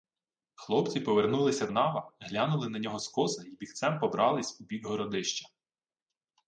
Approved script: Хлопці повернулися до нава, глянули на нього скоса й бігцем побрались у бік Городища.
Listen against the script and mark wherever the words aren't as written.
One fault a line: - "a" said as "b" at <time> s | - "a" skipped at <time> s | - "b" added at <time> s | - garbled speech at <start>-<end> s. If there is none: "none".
- "до" skipped at 1.7 s